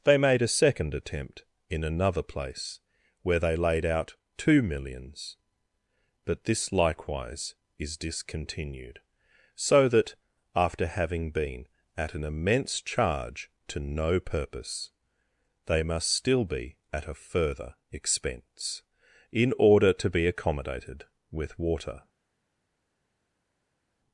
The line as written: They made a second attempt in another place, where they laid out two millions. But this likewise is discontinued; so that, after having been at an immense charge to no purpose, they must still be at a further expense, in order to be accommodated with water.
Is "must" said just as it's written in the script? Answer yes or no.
yes